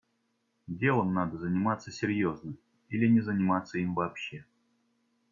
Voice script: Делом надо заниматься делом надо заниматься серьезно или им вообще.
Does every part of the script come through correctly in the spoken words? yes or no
no